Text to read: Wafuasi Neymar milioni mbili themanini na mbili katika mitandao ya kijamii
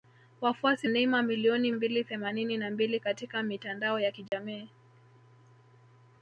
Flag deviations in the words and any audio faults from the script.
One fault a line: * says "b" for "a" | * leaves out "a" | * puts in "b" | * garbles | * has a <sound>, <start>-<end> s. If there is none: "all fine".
* has a dropout, 4.3-4.3 s